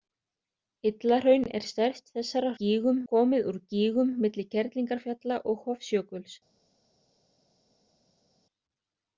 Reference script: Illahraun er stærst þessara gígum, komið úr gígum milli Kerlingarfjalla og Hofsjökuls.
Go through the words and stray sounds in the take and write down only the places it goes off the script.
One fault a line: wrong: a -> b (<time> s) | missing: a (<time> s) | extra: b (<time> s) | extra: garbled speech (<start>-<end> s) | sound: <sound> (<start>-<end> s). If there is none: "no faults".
no faults